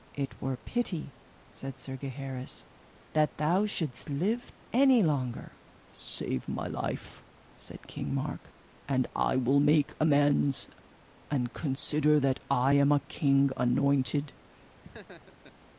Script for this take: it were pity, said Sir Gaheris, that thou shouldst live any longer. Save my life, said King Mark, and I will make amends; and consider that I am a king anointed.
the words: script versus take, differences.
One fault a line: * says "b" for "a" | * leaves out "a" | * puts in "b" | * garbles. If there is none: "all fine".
all fine